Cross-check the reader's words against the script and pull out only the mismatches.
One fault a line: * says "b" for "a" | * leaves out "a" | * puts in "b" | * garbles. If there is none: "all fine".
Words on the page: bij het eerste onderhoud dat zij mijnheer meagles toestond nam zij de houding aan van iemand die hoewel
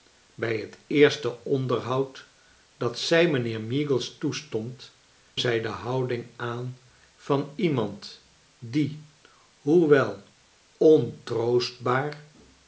* leaves out "nam"